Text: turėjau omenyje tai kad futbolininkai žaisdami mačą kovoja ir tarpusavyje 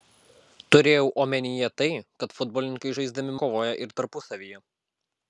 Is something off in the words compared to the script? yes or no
yes